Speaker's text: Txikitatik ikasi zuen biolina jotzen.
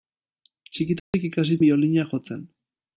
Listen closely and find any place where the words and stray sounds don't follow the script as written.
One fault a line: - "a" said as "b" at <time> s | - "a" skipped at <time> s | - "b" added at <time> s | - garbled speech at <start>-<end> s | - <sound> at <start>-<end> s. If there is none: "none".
- dropout at 1.0-1.1 s
- "zuen" skipped at 1.6 s